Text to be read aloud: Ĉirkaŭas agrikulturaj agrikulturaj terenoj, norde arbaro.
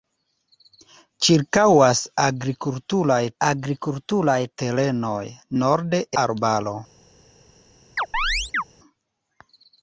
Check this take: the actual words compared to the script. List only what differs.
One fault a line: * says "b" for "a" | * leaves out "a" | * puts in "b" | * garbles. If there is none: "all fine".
all fine